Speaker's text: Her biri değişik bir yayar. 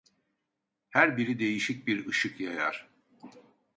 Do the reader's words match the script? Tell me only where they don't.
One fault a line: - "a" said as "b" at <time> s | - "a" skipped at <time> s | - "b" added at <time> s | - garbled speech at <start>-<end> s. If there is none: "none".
- "ışık" added at 2.1 s